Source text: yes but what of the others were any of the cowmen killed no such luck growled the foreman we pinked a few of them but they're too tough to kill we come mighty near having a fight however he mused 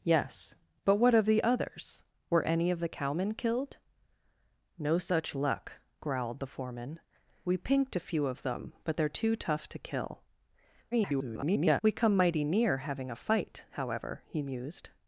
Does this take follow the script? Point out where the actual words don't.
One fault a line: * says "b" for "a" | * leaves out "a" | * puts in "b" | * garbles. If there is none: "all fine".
* garbles